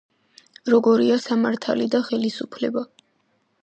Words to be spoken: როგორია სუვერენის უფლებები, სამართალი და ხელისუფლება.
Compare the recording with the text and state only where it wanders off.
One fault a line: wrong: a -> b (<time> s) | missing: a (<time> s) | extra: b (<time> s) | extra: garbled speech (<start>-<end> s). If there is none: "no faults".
missing: სუვერენის უფლებები (1.2 s)